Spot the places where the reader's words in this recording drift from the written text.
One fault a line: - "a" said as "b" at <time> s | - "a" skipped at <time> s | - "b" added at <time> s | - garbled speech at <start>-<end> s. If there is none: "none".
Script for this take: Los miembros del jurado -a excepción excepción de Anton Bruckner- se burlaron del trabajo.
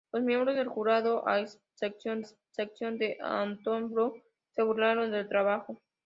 none